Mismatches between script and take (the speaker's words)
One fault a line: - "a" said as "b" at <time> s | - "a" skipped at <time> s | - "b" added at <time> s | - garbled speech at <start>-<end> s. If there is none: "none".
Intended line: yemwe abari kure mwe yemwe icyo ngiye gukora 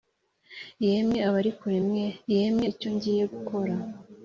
none